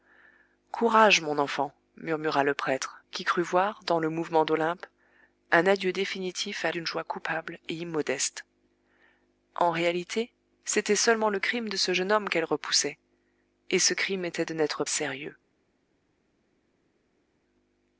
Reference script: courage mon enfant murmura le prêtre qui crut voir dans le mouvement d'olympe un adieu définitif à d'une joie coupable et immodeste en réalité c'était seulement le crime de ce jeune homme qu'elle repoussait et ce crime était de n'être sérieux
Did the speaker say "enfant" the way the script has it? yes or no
yes